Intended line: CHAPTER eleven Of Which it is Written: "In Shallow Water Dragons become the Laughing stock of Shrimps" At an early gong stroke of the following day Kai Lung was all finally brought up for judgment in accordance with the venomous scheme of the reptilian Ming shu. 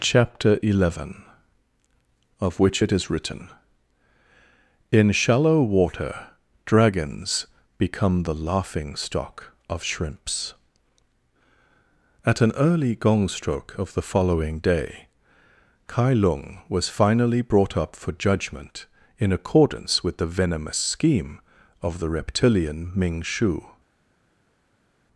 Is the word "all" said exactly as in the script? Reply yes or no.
no